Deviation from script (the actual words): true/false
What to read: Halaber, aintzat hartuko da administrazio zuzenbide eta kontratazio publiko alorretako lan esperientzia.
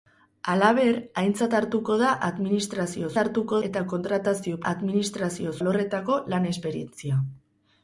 true